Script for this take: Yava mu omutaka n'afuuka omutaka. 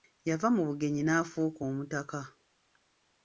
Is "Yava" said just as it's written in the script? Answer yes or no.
yes